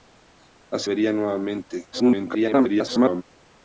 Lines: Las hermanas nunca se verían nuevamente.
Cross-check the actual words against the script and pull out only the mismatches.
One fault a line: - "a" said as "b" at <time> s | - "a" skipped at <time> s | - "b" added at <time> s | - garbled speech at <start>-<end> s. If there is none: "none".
- "hermanas nunca se" skipped at 0.9 s
- garbled speech at 1.9-3.2 s